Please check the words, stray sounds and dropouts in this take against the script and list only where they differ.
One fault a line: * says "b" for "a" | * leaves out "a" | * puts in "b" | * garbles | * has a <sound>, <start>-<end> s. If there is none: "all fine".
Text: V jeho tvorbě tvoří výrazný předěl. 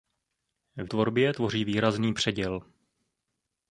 * leaves out "jeho"